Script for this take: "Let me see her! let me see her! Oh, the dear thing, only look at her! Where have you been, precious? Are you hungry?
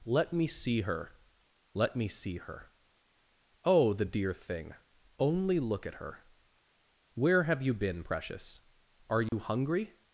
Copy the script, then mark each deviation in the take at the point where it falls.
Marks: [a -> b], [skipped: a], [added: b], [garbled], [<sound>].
"Let me see her! let me see her! Oh, the dear thing, only look at her! Where have you been, precious? Are you [dropout] hungry?